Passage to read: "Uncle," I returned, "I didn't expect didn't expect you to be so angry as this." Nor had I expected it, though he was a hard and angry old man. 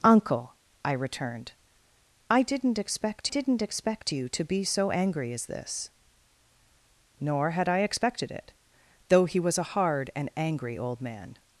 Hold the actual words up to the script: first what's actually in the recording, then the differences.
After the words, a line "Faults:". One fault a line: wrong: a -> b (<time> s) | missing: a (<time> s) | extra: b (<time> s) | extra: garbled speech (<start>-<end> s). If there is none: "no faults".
"Uncle," I returned, "I didn't expect didn't expect you to be so angry as this." Nor had I expected it, though he was a hard and angry old man.
Faults:
no faults